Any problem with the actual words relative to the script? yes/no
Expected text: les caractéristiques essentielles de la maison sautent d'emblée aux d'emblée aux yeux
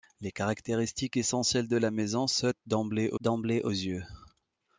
no